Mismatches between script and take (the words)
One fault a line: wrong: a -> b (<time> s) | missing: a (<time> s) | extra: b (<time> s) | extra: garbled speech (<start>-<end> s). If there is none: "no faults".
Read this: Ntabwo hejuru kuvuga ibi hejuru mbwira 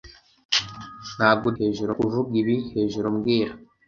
no faults